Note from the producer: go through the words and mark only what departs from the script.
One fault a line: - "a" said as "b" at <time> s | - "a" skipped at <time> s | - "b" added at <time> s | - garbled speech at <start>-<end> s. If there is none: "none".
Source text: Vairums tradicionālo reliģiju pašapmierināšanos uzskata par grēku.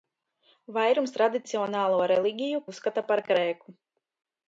- "pašapmierināšanos" skipped at 2.6 s